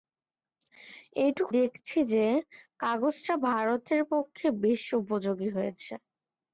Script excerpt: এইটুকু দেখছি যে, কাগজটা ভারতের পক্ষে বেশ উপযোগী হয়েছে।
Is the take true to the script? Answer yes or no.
yes